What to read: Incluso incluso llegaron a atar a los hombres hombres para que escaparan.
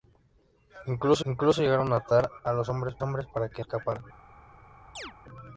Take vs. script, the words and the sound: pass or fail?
fail